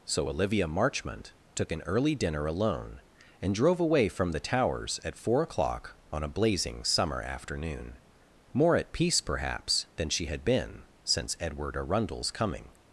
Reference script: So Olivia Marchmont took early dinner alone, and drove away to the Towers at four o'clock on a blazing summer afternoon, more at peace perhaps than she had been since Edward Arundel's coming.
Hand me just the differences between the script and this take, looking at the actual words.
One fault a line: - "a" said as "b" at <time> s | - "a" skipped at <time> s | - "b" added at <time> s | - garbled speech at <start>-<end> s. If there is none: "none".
- "an" added at 1.7 s
- "to" said as "from" at 4.1 s